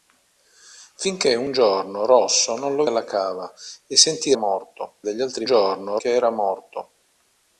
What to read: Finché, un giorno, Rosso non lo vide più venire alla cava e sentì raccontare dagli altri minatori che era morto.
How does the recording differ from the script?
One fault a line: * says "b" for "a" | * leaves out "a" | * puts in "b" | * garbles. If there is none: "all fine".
* leaves out "vide più venire"
* says "morto" for "raccontare"
* says "giorno" for "minatori"